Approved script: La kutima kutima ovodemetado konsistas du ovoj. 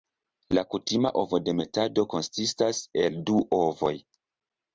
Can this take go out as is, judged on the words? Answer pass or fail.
fail